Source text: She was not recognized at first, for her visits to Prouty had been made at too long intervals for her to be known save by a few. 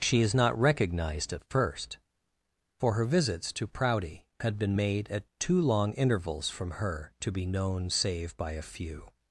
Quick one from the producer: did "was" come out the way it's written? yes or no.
no